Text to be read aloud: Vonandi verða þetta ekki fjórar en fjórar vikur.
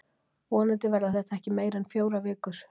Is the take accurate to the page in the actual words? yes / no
no